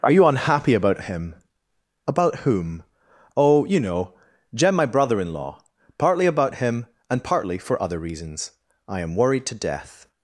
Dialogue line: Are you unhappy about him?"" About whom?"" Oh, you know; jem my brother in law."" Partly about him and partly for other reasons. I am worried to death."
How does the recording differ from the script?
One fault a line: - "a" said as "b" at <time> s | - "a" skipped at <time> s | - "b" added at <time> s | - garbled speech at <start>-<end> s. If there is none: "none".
none